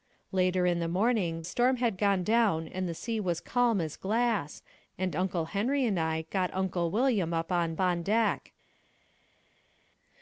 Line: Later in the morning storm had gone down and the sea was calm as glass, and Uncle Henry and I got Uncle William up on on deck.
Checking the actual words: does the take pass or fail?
pass